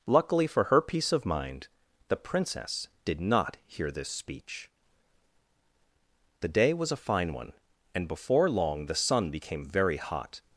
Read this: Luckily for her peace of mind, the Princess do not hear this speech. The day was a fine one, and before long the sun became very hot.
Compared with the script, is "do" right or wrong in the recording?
wrong